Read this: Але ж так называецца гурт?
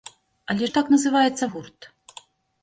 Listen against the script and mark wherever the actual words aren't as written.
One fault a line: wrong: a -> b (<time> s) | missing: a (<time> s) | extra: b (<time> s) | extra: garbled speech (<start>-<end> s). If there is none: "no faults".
no faults